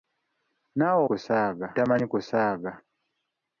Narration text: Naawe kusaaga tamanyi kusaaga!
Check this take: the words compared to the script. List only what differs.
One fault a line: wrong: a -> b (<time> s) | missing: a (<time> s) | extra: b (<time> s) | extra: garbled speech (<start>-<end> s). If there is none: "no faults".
no faults